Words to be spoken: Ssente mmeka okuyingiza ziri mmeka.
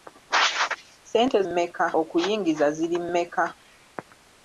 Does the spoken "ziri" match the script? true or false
true